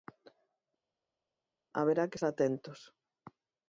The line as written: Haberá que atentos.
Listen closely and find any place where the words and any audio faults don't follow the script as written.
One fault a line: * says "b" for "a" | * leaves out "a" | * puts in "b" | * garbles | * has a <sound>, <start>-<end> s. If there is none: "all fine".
all fine